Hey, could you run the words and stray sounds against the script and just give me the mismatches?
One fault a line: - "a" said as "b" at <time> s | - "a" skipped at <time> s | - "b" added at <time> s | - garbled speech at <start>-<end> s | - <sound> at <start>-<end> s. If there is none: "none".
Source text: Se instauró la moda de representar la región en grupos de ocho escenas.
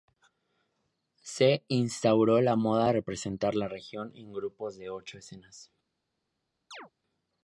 - chirp at 6.7-6.9 s